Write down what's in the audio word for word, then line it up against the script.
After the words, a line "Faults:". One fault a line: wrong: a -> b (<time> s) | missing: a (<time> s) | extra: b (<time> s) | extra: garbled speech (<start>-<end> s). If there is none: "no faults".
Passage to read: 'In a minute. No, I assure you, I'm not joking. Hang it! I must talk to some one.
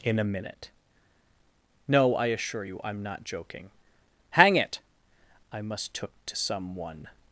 'In a minute. No, I assure you, I'm not joking. Hang it! I must took to some one.
Faults:
wrong: talk -> took (5.9 s)